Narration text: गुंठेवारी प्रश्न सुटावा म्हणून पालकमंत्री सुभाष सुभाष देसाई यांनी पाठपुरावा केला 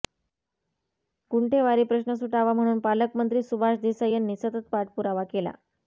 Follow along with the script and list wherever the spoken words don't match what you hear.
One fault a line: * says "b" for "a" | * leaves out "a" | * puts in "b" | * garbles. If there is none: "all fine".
* leaves out "सुभाष"
* puts in "सतत"